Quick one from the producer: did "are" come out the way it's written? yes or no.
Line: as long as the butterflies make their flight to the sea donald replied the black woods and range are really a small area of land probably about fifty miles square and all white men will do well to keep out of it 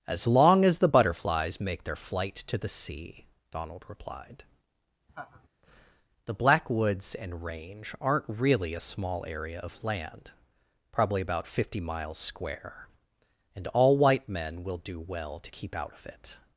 no